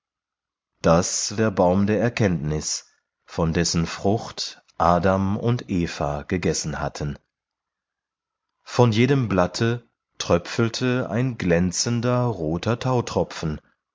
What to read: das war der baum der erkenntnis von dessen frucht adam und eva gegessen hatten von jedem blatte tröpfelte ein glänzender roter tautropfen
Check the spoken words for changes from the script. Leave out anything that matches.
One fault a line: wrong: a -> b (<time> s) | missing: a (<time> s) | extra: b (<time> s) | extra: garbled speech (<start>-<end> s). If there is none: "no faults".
missing: war (1.4 s)